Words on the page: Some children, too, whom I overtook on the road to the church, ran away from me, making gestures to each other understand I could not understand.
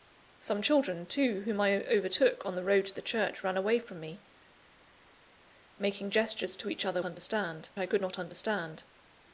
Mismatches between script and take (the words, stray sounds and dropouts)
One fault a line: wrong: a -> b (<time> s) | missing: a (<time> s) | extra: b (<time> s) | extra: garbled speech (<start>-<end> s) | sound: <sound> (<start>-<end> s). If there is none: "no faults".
no faults